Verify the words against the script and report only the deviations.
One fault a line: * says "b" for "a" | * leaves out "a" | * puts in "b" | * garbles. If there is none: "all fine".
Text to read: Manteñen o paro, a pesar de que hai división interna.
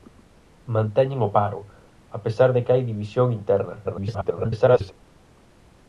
* garbles